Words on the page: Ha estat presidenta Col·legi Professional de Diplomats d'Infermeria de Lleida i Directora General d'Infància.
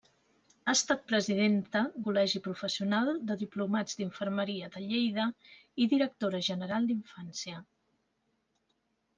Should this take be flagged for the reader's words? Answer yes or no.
no